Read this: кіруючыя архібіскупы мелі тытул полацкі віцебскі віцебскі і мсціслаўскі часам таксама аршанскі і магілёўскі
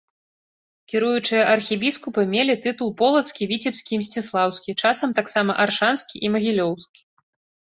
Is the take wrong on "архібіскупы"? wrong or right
right